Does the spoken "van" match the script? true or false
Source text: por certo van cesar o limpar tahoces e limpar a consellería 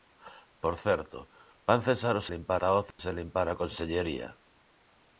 true